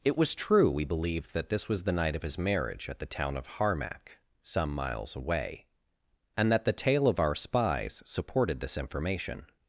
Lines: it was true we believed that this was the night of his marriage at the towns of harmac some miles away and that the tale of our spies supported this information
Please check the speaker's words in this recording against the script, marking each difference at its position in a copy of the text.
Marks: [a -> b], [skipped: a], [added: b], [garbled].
it was true we believed that this was the night of his marriage at the [towns -> town] of harmac some miles away and that the tale of our spies supported this information